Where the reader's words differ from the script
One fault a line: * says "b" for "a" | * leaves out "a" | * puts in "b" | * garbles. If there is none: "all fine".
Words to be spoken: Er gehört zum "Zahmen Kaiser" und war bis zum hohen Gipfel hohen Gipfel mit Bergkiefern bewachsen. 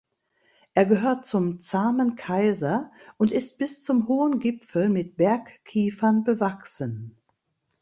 * says "ist" for "war"
* leaves out "hohen Gipfel"